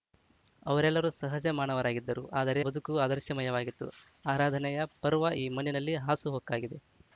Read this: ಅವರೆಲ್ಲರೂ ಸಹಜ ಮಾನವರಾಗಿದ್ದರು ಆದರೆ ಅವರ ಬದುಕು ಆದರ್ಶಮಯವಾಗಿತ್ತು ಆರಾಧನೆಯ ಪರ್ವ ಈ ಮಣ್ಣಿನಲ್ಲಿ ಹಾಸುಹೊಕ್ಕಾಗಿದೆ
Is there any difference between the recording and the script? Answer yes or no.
yes